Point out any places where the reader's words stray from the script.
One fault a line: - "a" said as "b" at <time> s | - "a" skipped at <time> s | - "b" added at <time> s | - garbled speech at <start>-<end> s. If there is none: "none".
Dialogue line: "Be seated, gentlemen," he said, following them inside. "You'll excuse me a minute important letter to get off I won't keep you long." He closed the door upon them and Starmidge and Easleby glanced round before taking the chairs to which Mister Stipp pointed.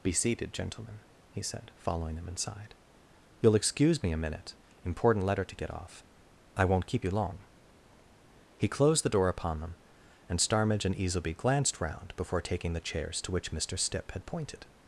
- "had" added at 14.1 s